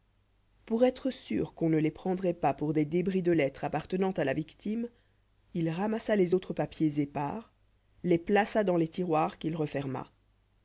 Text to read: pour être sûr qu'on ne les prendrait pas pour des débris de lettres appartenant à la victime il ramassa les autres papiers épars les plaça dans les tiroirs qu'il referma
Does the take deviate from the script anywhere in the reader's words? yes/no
no